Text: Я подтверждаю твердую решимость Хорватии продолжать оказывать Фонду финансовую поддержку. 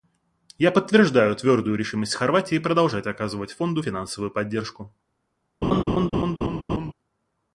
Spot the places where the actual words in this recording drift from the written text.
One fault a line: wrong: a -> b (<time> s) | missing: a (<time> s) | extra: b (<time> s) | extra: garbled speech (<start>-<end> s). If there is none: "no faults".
no faults